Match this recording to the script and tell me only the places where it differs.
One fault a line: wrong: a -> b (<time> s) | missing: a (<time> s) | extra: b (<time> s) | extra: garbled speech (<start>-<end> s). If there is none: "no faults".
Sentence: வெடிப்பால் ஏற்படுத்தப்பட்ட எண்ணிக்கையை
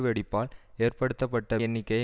no faults